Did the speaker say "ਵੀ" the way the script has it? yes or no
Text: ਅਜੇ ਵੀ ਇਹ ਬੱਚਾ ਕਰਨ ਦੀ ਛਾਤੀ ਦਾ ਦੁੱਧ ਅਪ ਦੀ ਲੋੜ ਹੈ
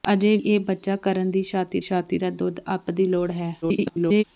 no